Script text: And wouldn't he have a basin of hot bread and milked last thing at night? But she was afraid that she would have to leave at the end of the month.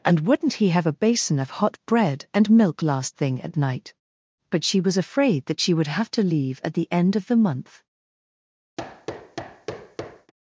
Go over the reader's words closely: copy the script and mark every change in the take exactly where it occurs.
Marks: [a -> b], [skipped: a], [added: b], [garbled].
And wouldn't he have a basin of hot bread and [milked -> milk] last thing at night? But she was afraid that she would have to leave at the end of the month.